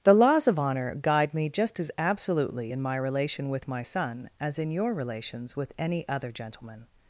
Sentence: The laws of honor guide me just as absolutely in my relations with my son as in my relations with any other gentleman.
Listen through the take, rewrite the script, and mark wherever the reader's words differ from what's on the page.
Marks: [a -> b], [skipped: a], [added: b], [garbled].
The laws of honor guide me just as absolutely in my [relations -> relation] with my son as in [my -> your] relations with any other gentleman.